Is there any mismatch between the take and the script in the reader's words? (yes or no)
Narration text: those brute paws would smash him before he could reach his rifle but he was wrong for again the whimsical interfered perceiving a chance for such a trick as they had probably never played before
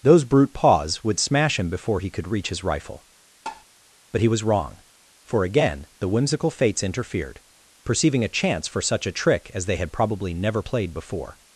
yes